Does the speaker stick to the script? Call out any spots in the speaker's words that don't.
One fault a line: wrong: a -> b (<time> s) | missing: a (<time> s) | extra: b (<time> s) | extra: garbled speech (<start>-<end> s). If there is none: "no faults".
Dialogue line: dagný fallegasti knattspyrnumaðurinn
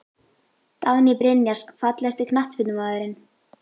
extra: brynjars (1.2 s)